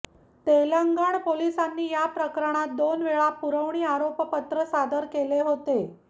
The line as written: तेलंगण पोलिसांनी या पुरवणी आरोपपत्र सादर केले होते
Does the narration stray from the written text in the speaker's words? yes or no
yes